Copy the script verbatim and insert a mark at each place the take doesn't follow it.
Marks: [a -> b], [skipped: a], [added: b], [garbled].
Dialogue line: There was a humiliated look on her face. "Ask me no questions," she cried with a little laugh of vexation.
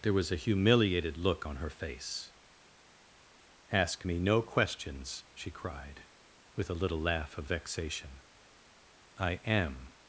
There was a humiliated look on her face. "Ask me no questions," she cried with a little laugh of vexation. [added: I am]